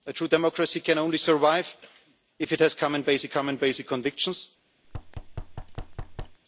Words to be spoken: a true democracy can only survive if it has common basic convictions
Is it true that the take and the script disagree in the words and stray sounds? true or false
true